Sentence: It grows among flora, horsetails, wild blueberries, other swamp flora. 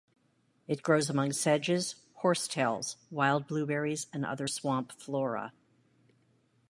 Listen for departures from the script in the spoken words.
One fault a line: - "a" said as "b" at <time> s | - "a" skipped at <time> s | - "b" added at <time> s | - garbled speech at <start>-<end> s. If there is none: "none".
- "flora" said as "sedges" at 1.3 s
- "and" added at 4.1 s